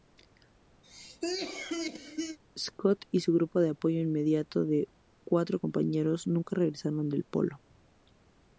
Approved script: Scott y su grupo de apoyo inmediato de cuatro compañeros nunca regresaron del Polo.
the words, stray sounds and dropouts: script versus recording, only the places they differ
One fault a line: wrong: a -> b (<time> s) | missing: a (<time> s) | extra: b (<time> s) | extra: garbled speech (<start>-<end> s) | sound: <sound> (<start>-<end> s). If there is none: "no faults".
sound: cough (0.8-2.4 s)